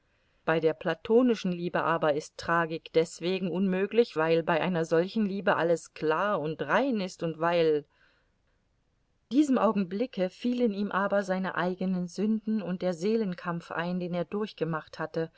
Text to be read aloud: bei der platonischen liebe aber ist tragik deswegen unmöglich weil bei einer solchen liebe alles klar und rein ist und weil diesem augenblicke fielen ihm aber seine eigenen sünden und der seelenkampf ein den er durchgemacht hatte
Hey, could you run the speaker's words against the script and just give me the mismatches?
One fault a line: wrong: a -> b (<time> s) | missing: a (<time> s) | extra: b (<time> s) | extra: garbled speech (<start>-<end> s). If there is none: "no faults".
no faults